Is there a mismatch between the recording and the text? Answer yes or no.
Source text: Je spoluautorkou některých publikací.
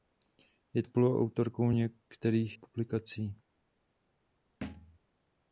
no